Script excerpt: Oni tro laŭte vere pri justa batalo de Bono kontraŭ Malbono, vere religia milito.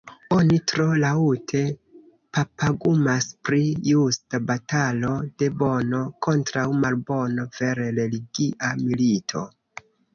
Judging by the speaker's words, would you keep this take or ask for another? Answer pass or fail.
fail